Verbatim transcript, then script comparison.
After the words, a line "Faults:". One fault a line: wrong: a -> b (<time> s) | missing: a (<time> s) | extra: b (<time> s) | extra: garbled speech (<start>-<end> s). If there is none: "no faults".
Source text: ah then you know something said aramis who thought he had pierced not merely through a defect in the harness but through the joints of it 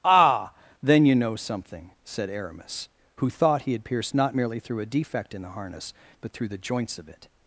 ah then you know something said aramis who thought he had pierced not merely through a defect in the harness but through the joints of it
Faults:
no faults